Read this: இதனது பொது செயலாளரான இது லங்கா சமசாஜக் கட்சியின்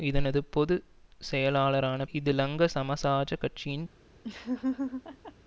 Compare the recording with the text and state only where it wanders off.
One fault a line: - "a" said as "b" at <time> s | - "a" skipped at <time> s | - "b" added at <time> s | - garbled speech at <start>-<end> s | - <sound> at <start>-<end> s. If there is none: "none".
- laugh at 4.2-5.3 s